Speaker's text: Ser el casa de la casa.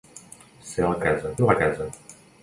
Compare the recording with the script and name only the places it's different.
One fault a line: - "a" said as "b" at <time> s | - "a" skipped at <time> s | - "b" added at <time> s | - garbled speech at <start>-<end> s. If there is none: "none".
none